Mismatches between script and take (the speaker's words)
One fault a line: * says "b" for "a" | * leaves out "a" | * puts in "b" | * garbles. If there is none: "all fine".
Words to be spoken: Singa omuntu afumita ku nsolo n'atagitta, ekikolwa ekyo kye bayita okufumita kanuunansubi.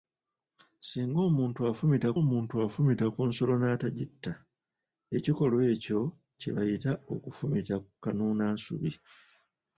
* puts in "omuntu afumita"